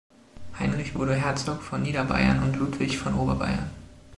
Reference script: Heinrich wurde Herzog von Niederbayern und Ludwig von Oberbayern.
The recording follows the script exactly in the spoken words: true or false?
true